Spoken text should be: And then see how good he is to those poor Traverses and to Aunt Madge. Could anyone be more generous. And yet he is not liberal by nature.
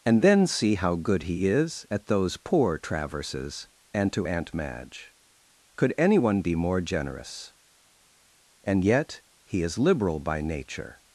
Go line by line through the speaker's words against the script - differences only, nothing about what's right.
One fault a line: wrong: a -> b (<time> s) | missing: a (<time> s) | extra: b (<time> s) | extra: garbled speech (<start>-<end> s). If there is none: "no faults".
wrong: to -> at (1.9 s)
missing: not (9.8 s)